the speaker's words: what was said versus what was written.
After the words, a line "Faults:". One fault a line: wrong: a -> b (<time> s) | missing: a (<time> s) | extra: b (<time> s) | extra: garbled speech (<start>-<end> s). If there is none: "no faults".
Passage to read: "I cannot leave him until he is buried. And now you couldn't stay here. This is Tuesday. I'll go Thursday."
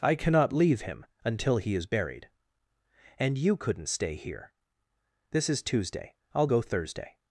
"I cannot leave him until he is buried. And you couldn't stay here. This is Tuesday. I'll go Thursday."
Faults:
missing: now (3.4 s)